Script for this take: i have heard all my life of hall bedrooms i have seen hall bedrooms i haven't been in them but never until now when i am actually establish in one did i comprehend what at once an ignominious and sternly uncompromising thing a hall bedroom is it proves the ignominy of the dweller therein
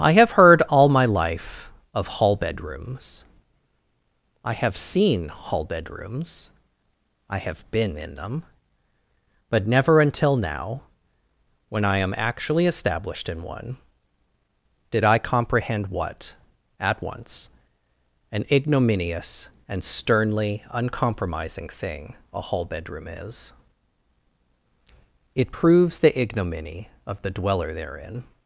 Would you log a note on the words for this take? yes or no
yes